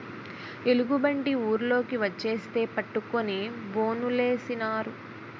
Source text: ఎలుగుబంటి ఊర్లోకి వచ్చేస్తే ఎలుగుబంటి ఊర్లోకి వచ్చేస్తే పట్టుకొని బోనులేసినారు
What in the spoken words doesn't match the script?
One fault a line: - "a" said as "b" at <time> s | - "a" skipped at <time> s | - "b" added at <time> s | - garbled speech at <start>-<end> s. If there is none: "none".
- "ఎలుగుబంటి ఊర్లోకి వచ్చేస్తే" skipped at 2.6 s